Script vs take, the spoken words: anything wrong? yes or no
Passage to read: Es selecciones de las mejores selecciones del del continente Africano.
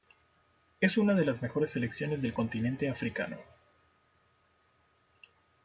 yes